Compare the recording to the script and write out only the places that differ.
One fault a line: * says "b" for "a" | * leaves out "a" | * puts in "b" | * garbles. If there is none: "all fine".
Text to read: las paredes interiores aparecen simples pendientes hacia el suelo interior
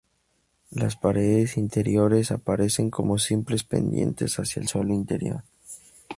* puts in "como"